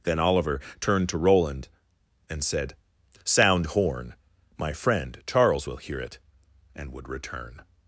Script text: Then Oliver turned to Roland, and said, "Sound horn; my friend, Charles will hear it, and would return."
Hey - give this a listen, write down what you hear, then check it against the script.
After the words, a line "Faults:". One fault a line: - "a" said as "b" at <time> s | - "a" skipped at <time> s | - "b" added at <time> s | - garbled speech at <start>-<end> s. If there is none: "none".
Then Oliver turned to Roland, and said, "Sound horn; my friend, Charles will hear it, and would return."
Faults:
none